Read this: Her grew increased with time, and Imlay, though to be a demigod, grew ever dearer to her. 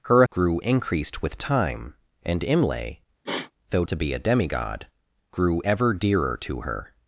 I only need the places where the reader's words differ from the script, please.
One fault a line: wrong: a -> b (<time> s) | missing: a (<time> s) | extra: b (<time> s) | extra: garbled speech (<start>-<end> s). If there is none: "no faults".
no faults